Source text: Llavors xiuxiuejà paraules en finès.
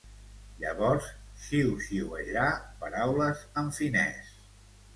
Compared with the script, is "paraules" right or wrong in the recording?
right